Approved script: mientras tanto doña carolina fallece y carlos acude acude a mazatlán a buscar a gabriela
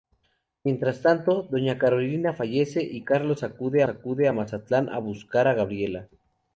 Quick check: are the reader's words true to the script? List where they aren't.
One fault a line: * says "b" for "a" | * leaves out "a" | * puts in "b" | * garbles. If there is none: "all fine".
all fine